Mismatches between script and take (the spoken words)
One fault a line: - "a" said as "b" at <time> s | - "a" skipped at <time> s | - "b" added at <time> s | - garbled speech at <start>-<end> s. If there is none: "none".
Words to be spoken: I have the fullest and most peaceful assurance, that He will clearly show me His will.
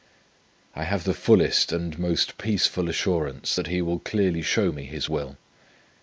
none